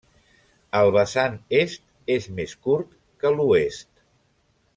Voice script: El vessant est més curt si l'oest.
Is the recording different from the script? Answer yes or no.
yes